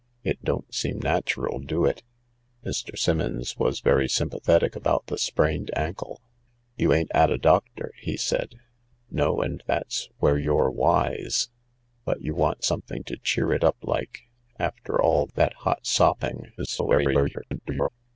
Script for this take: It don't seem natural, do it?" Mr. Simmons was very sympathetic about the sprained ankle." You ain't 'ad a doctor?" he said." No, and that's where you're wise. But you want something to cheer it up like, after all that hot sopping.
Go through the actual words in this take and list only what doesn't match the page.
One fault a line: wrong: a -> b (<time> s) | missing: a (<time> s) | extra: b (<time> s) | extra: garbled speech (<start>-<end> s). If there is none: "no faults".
extra: garbled speech (16.6-17.9 s)